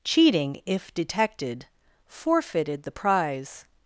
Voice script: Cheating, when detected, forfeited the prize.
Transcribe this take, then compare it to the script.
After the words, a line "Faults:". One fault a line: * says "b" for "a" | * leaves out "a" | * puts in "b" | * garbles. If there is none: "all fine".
Cheating, if detected, forfeited the prize.
Faults:
* says "if" for "when"